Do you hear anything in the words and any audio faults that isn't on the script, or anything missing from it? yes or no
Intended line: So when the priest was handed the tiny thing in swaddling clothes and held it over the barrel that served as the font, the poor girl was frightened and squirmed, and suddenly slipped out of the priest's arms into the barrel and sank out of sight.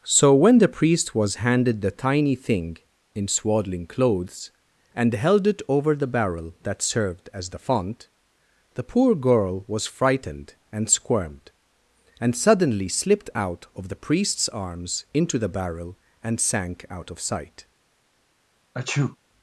yes